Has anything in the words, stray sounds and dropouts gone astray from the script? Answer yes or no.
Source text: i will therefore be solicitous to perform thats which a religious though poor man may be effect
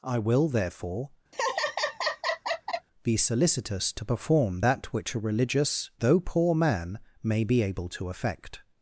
yes